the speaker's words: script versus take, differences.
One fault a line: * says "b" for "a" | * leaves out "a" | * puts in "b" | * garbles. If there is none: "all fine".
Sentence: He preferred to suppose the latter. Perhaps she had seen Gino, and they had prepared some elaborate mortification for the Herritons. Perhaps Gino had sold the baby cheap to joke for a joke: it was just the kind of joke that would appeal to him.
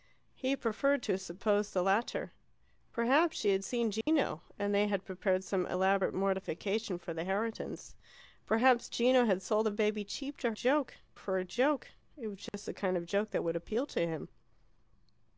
all fine